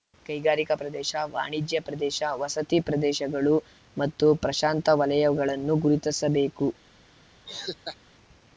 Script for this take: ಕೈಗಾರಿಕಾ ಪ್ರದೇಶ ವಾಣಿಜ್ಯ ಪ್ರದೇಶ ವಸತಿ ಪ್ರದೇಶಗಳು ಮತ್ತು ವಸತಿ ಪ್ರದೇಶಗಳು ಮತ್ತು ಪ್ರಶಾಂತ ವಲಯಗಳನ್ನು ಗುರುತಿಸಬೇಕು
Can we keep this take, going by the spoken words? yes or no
no